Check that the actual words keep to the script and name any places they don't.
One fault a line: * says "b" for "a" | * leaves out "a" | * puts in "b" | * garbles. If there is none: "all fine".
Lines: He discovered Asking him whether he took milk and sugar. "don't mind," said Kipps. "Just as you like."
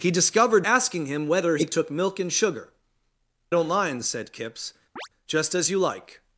all fine